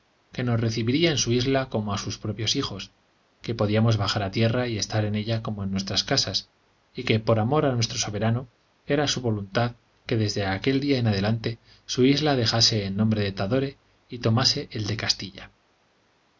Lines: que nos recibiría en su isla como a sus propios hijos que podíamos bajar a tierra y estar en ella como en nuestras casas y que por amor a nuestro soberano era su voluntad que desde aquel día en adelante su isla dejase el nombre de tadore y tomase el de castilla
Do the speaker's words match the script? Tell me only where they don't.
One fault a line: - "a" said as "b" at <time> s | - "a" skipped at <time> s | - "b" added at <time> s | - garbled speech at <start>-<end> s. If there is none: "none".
none